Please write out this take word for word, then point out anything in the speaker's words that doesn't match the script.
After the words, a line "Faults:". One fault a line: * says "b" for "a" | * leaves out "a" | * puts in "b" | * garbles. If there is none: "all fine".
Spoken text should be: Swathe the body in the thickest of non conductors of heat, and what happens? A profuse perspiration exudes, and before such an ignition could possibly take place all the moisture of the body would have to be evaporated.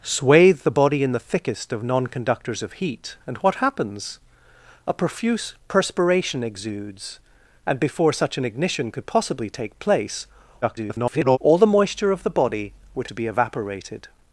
Swathe the body in the thickest of non conductors of heat, and what happens? A profuse perspiration exudes, and before such an ignition could possibly take place [garbled] all the moisture of the body would to be evaporated.
Faults:
* garbles
* leaves out "have"